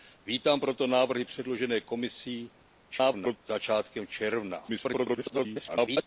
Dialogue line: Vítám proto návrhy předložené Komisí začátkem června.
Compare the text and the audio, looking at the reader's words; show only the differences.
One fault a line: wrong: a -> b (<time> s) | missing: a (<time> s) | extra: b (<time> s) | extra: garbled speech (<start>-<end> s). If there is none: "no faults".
extra: garbled speech (2.9-3.4 s)
extra: garbled speech (4.7-6.1 s)